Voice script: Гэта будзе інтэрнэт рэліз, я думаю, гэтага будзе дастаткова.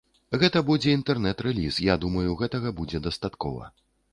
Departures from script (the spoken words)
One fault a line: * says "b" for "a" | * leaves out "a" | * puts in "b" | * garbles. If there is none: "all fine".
all fine